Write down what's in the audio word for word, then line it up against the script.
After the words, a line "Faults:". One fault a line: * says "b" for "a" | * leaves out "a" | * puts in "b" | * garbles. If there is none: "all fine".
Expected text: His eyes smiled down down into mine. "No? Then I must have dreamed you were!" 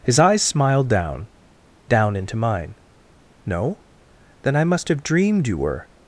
His eyes smiled down down into mine. "No? Then I must have dreamed you were!"
Faults:
all fine